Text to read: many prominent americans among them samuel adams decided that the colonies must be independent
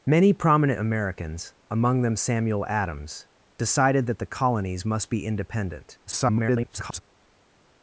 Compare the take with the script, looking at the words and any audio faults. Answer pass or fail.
fail